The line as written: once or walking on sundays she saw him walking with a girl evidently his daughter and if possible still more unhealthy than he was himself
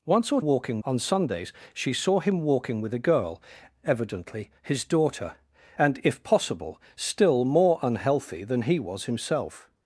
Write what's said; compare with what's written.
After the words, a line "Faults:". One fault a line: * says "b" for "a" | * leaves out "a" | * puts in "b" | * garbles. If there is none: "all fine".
once or walking on sundays she saw him walking with a girl evidently his daughter and if possible still more unhealthy than he was himself
Faults:
all fine